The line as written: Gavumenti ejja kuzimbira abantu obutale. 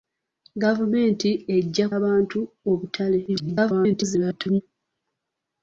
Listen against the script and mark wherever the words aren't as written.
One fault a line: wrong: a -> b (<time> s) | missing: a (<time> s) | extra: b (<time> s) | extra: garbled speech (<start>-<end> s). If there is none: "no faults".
missing: kuzimbira (1.9 s)
extra: garbled speech (3.3-4.6 s)